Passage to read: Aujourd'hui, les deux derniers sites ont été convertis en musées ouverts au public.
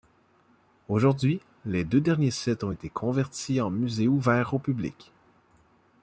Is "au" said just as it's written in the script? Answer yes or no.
yes